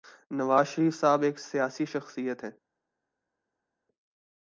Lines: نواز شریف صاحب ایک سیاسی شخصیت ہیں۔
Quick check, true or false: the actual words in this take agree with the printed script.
true